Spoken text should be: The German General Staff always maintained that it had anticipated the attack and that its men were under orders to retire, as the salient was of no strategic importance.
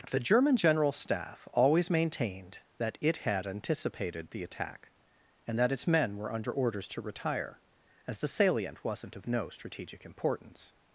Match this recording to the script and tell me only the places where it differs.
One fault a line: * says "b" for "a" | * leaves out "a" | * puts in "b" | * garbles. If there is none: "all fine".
* says "wasn't" for "was"